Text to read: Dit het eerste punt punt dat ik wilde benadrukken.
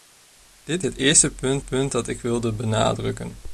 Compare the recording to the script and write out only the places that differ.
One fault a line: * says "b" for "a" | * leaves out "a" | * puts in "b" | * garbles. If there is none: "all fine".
all fine